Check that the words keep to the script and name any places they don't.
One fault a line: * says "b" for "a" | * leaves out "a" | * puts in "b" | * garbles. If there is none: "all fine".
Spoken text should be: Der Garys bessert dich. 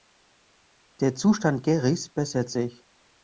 * puts in "Zustand"
* says "sich" for "dich"